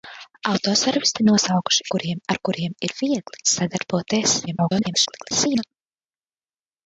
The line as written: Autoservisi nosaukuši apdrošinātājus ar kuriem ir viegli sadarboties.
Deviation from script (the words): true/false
true